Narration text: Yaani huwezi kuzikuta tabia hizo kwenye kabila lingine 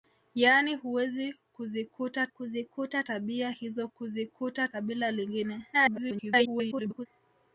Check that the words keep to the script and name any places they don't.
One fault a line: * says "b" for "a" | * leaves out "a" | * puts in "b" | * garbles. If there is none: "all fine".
* puts in "kuzikuta"
* says "kuzikuta" for "kwenye"
* garbles